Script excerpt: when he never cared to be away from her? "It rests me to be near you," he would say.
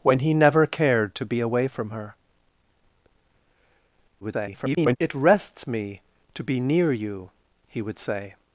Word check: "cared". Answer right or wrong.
right